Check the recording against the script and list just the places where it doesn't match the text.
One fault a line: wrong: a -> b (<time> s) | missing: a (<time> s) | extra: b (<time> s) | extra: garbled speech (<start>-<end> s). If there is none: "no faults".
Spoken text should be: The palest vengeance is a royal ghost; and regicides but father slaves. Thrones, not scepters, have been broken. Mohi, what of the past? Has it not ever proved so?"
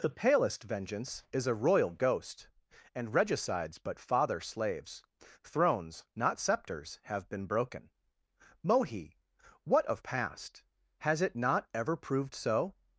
missing: the (10.0 s)